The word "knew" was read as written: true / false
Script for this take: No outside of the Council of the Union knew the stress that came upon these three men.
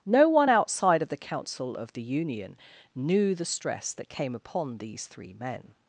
true